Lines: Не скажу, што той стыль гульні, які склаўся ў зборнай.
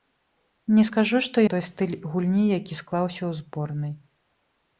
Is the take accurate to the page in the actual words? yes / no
yes